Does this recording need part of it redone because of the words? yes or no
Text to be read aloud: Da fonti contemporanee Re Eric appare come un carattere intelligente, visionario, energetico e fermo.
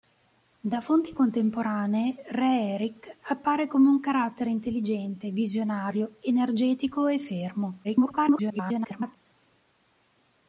yes